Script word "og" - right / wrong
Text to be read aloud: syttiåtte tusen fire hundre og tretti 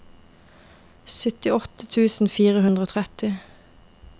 right